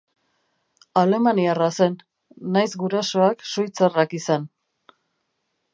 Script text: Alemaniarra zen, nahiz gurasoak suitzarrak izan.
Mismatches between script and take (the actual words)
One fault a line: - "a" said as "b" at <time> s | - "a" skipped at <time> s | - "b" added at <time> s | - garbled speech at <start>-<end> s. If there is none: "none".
none